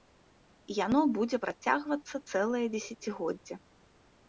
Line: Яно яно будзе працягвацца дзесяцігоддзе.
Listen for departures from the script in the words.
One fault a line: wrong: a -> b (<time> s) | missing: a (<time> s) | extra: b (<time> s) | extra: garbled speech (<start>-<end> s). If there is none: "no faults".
missing: яно (1.0 s)
extra: цэлае (2.3 s)